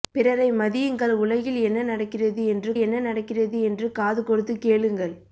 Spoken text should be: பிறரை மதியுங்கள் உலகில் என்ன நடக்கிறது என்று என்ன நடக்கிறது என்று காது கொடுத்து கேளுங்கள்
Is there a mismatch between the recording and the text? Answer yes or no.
no